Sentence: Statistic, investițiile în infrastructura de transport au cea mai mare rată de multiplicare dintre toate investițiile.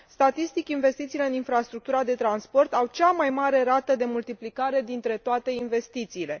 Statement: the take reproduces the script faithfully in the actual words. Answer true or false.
true